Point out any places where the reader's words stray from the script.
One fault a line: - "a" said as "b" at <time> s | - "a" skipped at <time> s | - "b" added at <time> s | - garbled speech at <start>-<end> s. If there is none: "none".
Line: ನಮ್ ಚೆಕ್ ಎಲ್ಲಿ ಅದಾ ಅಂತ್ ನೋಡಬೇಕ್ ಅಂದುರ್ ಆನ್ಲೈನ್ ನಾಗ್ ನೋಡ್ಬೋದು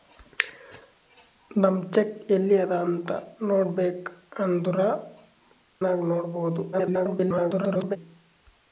- "ಆನ್ಲೈನ್" skipped at 4.8 s
- garbled speech at 6.7-8.0 s